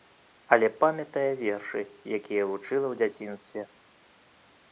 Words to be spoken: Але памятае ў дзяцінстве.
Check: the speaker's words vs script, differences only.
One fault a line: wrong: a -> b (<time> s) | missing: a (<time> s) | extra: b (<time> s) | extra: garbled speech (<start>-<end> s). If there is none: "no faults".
extra: вершы якія вучыла (1.4 s)